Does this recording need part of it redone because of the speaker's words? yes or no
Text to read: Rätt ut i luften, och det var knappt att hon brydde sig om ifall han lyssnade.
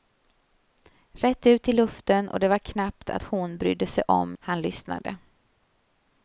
yes